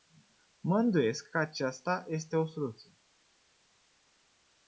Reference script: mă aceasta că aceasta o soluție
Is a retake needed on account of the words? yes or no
yes